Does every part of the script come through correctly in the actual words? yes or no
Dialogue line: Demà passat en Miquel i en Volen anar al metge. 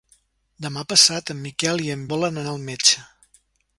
yes